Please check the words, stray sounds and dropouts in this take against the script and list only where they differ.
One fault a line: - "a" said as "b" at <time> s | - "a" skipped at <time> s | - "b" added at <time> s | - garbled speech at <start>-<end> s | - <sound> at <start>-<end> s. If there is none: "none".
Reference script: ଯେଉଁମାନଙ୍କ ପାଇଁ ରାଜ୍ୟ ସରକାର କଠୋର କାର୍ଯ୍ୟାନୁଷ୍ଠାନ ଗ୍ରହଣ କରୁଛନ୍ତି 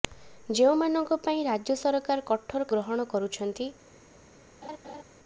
- "କାର୍ଯ୍ୟାନୁଷ୍ଠାନ" skipped at 2.7 s
- laugh at 4.6-5.0 s